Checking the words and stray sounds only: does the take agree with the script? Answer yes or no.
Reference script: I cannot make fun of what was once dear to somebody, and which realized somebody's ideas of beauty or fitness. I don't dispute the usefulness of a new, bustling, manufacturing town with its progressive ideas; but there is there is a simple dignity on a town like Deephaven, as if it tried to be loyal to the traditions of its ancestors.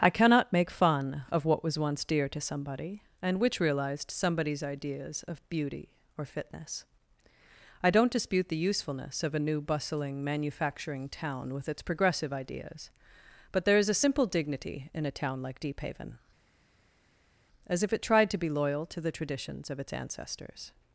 no